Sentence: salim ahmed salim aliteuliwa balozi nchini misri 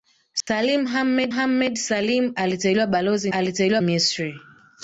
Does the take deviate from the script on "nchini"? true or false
true